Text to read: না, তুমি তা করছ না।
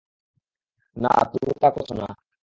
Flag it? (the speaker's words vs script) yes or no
no